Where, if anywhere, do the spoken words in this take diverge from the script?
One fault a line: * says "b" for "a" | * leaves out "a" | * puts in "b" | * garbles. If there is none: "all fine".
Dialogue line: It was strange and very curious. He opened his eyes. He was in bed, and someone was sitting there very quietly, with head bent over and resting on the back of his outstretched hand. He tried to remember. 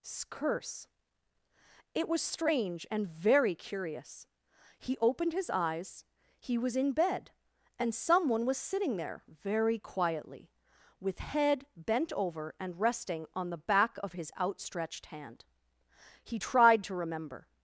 * puts in "curse"